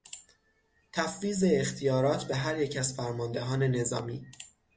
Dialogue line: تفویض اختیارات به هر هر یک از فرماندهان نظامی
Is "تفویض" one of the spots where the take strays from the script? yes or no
no